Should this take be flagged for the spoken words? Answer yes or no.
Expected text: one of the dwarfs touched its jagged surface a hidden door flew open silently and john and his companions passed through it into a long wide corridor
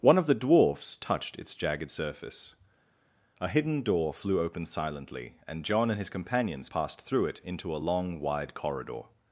no